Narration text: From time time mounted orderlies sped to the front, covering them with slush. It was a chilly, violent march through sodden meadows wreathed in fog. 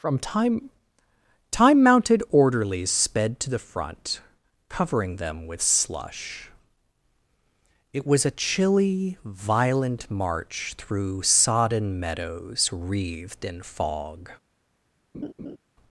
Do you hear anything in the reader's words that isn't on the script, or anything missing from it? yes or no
no